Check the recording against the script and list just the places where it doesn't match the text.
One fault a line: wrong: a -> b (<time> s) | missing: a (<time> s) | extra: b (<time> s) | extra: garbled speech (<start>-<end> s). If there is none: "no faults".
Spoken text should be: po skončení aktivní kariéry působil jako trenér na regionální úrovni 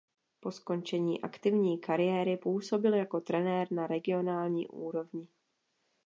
no faults